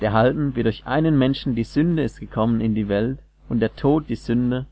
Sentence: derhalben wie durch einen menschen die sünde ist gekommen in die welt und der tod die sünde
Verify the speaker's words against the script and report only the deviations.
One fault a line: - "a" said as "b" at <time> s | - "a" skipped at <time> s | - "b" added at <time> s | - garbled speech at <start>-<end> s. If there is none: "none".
none